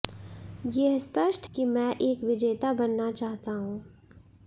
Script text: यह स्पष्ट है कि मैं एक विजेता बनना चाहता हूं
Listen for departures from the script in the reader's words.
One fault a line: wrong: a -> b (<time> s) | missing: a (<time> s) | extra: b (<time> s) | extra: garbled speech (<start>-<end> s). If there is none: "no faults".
missing: है (1.5 s)